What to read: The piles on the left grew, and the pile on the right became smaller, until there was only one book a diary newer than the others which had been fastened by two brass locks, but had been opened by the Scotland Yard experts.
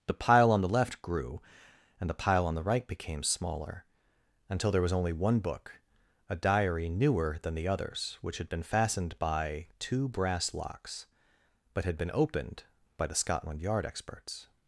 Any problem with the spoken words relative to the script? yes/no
yes